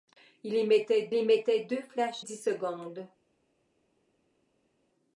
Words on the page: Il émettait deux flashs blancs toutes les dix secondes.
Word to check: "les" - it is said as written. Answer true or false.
false